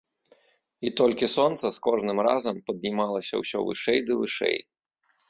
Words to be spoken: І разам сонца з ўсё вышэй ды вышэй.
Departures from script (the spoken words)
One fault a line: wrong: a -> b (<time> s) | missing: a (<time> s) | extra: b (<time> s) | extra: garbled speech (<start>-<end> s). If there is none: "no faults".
wrong: разам -> толькі (1.0 s)
extra: кожным разам паднімалася (1.9 s)